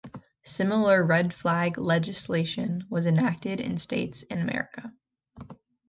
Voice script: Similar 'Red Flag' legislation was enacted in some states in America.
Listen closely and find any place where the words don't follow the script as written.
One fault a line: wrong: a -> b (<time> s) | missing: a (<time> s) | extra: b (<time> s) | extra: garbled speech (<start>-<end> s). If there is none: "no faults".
missing: some (3.8 s)